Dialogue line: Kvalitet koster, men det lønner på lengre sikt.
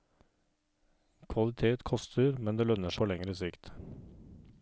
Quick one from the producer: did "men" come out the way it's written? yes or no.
yes